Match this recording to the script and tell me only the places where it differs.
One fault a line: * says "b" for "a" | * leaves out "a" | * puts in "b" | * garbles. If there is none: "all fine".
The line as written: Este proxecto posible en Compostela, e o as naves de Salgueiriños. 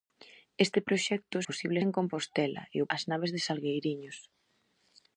all fine